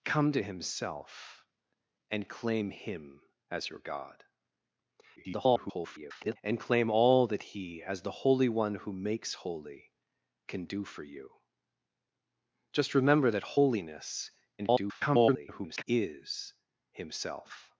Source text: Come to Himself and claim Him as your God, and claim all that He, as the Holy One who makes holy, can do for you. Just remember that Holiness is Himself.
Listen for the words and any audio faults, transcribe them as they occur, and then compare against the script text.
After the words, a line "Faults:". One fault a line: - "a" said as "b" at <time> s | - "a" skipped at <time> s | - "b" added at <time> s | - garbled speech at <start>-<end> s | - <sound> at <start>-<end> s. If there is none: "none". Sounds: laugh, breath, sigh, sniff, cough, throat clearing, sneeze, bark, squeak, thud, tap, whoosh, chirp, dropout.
Come to Himself and claim Him as your God, [garbled] and claim all that He, as the Holy One who makes holy, can do for you. Just remember that Holiness [garbled] is Himself.
Faults:
- garbled speech at 5.2-6.4 s
- garbled speech at 14.6-15.8 s